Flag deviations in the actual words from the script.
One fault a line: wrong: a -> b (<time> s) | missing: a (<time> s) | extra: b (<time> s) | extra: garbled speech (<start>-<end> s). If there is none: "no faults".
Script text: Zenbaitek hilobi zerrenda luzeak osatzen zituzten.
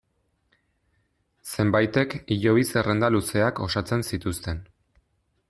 no faults